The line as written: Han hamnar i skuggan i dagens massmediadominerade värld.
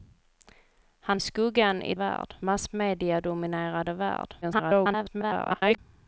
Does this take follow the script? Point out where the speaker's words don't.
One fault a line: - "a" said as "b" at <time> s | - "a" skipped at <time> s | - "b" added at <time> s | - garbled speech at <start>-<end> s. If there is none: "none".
- "hamnar" skipped at 1.2 s
- "dagens" said as "värld" at 1.9 s
- garbled speech at 4.4-5.8 s